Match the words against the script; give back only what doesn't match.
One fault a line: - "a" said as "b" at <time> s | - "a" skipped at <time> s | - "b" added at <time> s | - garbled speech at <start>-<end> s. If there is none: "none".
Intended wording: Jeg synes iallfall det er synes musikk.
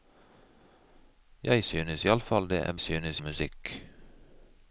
none